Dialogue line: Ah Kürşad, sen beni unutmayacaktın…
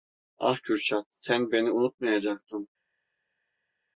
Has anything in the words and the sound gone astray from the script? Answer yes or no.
no